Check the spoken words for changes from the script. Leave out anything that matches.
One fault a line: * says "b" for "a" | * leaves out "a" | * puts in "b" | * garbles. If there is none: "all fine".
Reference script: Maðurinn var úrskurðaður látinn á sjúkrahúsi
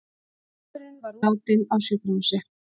* leaves out "úrskurðaður"